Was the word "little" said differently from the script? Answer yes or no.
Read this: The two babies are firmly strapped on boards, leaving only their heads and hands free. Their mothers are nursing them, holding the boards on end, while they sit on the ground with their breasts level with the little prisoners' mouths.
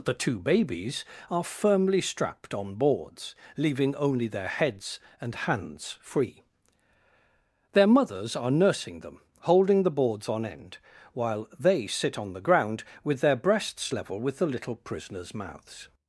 no